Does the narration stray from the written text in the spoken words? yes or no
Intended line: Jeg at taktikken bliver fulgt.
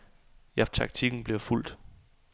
no